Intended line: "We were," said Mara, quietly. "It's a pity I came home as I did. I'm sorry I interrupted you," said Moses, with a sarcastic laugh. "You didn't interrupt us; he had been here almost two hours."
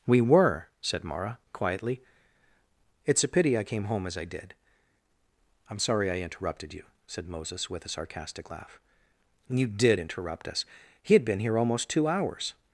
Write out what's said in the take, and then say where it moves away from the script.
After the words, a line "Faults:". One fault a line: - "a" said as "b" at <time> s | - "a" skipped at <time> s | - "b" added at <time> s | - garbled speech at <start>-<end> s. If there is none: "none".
"We were," said Mara, quietly. "It's a pity I came home as I did. I'm sorry I interrupted you," said Moses, with a sarcastic laugh. "You did interrupt us; he had been here almost two hours."
Faults:
- "didn't" said as "did" at 9.7 s